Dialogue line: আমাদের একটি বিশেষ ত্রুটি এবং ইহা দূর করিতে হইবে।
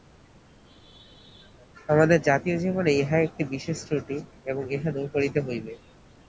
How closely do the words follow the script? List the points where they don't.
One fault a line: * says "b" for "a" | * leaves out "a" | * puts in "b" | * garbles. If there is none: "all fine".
* puts in "জাতীয় জীবনে ইহা"